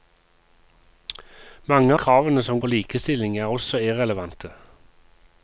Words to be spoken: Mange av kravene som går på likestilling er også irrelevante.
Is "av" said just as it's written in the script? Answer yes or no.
no